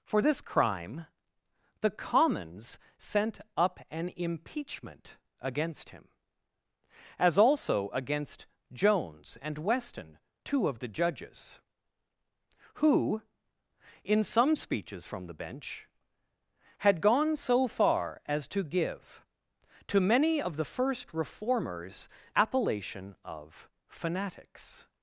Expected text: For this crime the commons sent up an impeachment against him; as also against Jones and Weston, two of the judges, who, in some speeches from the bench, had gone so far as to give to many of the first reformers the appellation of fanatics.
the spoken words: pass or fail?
fail